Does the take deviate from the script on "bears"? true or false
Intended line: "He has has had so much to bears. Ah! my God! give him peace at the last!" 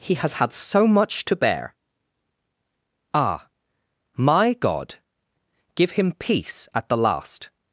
true